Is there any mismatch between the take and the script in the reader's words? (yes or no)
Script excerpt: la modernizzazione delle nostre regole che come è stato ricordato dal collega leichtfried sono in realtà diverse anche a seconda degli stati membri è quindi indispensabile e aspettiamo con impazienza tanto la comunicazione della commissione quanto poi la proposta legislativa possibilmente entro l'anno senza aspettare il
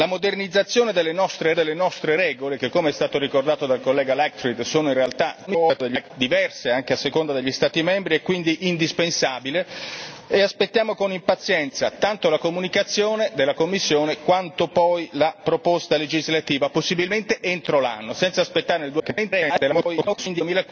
yes